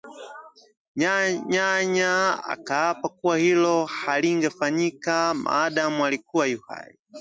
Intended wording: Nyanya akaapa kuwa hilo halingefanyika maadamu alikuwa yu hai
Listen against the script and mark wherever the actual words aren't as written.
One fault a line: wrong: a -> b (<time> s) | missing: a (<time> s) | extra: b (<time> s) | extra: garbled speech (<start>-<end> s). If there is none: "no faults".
no faults